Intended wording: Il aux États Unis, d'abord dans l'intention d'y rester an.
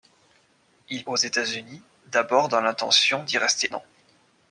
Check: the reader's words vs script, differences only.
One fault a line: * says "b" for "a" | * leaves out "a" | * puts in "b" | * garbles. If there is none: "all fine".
all fine